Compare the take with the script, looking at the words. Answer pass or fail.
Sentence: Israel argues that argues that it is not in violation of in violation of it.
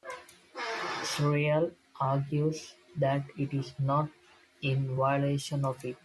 fail